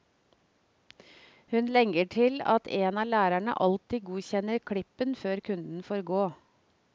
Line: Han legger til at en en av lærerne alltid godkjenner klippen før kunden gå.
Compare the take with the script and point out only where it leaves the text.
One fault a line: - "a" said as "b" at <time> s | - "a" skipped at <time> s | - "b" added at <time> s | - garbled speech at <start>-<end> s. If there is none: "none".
- "Han" said as "Hun" at 1.5 s
- "en" skipped at 3.0 s
- "får" added at 5.9 s